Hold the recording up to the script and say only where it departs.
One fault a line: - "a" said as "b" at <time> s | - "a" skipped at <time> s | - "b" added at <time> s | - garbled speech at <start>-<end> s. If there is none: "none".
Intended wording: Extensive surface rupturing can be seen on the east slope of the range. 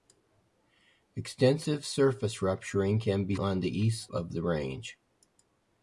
- "seen" skipped at 3.4 s
- "slope" skipped at 4.1 s